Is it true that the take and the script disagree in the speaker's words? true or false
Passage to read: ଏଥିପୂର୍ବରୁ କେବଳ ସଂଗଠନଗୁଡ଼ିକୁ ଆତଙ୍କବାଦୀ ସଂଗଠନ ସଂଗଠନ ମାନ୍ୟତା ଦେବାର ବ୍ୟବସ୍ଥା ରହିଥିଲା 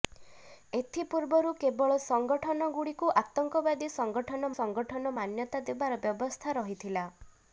false